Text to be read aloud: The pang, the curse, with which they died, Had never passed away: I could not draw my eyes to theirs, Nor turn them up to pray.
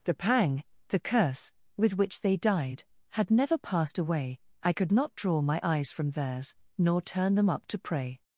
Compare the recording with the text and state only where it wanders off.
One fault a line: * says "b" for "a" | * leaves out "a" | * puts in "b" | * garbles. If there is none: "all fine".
* says "from" for "to"